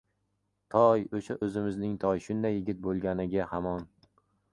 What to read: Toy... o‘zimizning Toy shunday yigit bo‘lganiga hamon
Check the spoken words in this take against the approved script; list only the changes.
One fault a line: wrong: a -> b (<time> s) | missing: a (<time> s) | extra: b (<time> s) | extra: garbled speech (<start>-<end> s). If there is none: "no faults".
extra: o‘sha (1.2 s)